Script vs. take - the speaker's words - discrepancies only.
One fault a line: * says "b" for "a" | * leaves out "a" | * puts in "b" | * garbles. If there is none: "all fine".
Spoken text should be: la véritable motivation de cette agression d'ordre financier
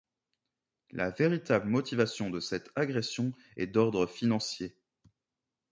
* puts in "est"